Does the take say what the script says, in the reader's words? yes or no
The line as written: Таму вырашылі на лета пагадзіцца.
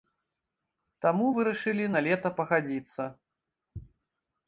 yes